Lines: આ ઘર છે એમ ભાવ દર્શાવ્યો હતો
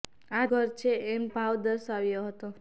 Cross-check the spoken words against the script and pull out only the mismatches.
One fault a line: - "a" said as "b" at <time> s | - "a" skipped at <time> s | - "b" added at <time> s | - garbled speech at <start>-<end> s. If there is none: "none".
none